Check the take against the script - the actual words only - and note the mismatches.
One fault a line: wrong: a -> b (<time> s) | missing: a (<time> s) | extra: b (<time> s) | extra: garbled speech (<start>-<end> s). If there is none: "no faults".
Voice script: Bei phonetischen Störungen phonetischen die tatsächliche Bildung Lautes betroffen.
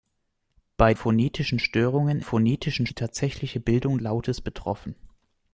no faults